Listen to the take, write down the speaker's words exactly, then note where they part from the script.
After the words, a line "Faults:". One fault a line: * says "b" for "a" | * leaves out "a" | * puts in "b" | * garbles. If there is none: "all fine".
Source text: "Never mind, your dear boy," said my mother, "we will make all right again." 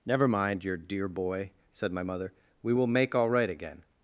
"Never mind, your dear boy," said my mother, "we will make all right again."
Faults:
all fine